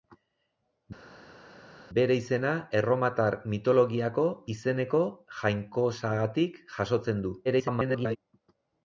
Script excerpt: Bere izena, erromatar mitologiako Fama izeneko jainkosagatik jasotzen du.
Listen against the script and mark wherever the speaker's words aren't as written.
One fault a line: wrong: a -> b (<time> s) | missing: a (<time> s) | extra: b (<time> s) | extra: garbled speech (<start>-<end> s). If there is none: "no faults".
missing: Fama (4.3 s)
extra: garbled speech (7.4-8.2 s)